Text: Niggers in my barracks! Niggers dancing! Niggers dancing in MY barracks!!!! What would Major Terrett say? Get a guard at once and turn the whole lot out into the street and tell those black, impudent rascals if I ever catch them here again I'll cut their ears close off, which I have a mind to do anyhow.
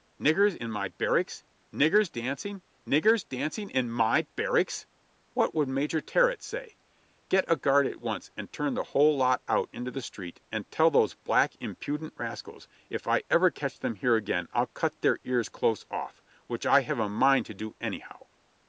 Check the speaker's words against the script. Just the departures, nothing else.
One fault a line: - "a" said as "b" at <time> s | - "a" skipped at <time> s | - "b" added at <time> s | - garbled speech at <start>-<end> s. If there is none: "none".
none